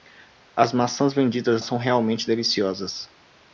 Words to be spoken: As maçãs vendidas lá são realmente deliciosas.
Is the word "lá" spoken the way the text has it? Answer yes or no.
no